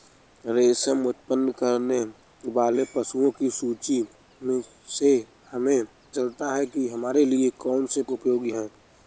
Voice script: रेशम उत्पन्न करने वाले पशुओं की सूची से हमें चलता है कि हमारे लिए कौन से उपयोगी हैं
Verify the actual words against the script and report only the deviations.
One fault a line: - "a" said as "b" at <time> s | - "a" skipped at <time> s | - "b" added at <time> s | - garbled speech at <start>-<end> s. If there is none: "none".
none